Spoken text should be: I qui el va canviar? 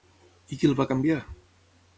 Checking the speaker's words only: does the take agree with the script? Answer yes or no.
yes